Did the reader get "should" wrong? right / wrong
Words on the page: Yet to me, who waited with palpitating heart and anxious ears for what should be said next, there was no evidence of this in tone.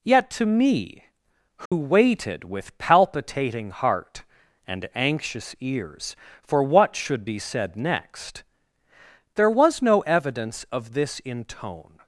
right